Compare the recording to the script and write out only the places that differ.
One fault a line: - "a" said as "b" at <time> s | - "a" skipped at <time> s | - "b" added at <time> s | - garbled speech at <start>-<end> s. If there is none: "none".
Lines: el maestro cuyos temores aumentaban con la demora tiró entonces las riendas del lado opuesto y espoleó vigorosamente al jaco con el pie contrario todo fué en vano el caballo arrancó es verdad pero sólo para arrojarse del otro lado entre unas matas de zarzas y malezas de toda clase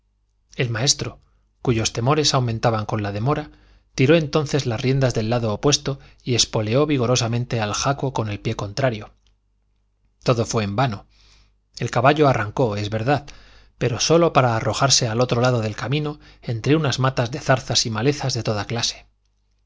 - "del" said as "al" at 15.1 s
- "del camino" added at 15.6 s